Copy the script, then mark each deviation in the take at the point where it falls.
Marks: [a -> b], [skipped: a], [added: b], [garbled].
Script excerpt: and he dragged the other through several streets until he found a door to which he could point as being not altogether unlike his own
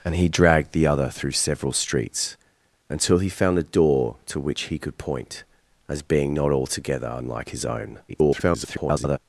and he dragged the other through several streets until he found a door to which he could point as being not altogether unlike his own [garbled]